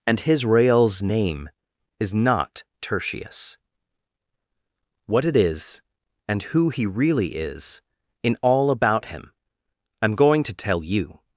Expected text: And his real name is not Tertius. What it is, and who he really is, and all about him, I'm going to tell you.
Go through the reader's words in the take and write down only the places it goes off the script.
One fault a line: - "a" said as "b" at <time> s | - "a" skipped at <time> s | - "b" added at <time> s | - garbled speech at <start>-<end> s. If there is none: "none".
- "real" said as "reals" at 0.5 s
- "and" said as "in" at 8.2 s